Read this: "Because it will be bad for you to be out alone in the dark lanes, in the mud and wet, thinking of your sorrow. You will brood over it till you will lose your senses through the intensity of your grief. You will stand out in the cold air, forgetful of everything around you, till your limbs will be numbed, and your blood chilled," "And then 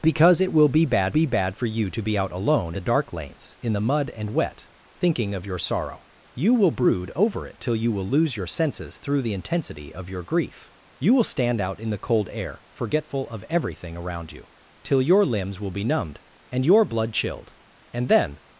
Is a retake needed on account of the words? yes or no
yes